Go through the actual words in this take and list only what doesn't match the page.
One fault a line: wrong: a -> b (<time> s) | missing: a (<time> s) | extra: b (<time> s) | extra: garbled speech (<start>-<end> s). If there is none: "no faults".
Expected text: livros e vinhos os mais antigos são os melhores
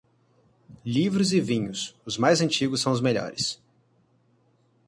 no faults